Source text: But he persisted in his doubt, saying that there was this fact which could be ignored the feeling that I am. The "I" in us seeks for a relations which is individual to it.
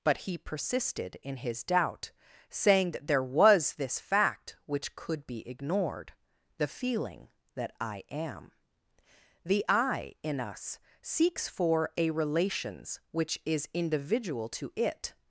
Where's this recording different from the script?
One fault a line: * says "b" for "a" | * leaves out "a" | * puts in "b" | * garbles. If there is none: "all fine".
all fine